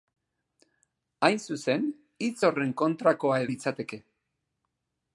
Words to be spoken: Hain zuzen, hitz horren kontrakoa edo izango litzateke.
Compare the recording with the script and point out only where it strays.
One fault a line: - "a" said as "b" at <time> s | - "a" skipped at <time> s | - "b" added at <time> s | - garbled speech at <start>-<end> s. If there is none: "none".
- "edo izango" skipped at 3.4 s